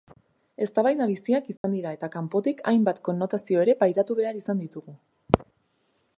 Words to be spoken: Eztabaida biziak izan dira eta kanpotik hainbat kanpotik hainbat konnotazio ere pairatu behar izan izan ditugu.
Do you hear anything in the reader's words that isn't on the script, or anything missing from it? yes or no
yes